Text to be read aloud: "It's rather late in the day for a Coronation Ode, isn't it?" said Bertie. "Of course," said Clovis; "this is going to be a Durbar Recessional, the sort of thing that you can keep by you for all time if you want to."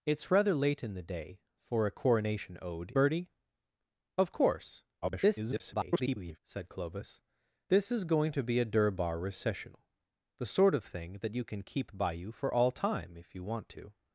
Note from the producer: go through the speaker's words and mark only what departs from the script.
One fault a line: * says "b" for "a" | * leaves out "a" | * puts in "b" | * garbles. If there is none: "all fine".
* leaves out "isn't it said"
* garbles